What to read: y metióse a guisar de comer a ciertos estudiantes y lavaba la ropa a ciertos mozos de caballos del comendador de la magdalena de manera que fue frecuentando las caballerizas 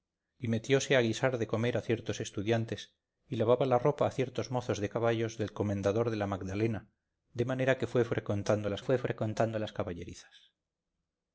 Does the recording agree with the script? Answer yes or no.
no